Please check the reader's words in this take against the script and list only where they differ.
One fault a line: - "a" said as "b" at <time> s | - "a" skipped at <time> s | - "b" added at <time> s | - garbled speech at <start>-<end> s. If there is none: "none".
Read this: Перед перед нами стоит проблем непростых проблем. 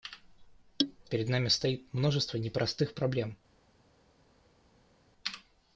- "перед" skipped at 1.3 s
- "проблем" said as "множество" at 1.9 s